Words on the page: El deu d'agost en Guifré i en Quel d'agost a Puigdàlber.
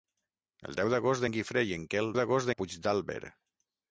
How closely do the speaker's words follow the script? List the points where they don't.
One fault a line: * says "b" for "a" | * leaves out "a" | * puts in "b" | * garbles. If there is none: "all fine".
all fine